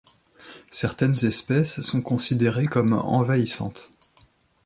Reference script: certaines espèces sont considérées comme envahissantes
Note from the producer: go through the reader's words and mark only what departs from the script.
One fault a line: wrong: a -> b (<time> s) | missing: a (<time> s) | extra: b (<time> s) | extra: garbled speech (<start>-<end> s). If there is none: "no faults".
no faults